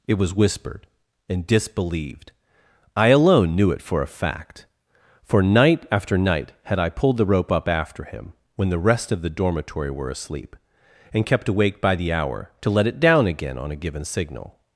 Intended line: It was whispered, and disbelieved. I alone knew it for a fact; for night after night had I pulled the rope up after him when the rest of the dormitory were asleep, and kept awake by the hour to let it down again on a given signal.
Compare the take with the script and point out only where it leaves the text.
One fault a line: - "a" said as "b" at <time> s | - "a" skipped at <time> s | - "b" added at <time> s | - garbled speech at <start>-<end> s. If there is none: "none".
none